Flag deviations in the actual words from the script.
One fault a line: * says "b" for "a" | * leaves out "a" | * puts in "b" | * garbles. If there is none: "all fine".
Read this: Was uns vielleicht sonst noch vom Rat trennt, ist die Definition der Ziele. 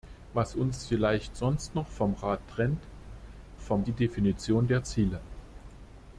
* says "vom" for "ist"